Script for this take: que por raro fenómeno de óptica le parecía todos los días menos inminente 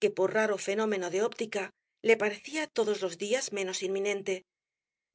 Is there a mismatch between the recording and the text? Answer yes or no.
no